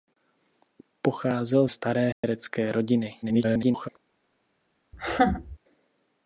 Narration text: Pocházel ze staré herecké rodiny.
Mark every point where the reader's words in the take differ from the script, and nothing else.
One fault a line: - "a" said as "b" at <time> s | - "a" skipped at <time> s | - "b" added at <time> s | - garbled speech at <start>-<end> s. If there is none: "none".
- "ze" skipped at 1.7 s
- garbled speech at 3.2-3.9 s